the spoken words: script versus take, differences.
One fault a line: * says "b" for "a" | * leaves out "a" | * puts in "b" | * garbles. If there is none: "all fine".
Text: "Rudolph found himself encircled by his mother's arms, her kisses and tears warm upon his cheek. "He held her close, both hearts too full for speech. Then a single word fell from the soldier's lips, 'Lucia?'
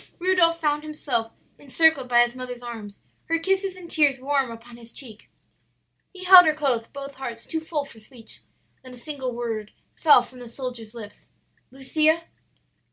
all fine